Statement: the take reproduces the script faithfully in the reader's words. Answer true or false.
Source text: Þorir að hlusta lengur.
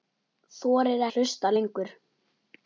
true